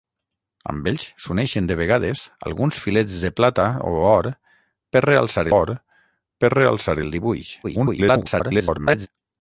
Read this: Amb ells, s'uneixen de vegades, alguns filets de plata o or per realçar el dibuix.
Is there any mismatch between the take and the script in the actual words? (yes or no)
yes